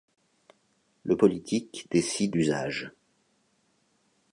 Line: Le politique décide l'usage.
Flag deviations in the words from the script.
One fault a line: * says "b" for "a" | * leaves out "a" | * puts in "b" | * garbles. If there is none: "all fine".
all fine